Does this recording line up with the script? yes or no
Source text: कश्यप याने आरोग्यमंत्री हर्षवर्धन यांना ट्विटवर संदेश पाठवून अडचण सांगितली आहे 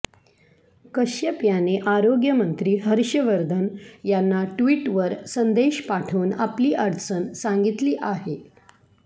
no